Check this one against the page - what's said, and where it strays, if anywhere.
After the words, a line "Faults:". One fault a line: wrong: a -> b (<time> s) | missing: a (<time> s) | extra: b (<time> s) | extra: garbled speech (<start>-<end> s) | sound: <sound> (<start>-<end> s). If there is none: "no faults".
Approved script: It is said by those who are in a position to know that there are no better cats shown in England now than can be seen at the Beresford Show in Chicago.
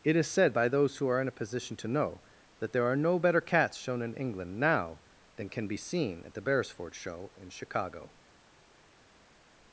It is said by those who are in a position to know that there are no better cats shown in England now than can be seen at the Beresford Show in Chicago.
Faults:
no faults